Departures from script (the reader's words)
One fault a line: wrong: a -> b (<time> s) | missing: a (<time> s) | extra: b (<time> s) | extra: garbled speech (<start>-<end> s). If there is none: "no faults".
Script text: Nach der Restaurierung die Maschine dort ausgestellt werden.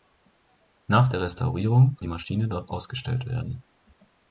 no faults